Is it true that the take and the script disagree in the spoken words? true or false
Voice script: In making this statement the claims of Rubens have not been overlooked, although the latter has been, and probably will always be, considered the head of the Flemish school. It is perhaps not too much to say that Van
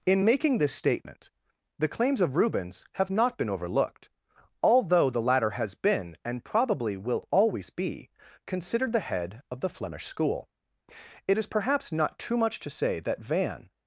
false